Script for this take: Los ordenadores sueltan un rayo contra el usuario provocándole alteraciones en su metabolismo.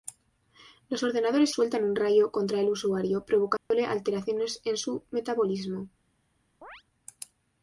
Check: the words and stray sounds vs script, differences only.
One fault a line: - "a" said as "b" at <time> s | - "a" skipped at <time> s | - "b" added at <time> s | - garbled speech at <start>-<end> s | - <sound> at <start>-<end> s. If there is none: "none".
- dropout at 3.6-3.7 s
- chirp at 6.6-6.8 s